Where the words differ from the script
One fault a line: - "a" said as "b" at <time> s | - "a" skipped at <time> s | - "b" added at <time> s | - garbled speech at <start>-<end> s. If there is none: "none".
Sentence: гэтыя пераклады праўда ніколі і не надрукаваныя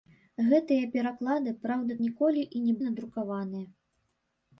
none